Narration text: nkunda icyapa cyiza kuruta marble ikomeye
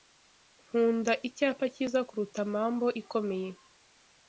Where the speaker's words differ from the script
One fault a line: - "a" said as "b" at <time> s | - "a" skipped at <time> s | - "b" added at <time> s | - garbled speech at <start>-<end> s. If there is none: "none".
none